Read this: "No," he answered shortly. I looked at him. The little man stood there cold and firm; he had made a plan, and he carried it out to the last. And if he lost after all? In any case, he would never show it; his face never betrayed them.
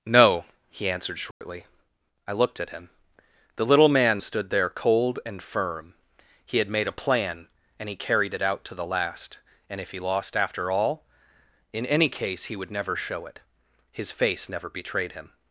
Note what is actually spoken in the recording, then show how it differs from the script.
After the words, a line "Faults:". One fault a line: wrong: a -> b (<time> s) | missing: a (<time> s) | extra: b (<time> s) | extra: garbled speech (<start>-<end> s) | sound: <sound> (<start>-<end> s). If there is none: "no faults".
"No," he answered shortly. I looked at him. The little man stood there cold and firm; he had made a plan, and he carried it out to the last. And if he lost after all? In any case, he would never show it; his face never betrayed him.
Faults:
sound: dropout (1.3-1.4 s)
wrong: them -> him (15.1 s)